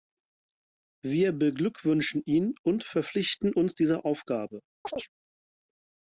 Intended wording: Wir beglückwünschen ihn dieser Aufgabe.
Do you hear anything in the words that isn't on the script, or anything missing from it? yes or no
yes